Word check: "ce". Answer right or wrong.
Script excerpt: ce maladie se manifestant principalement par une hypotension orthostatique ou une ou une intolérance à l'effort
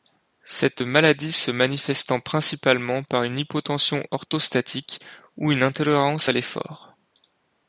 wrong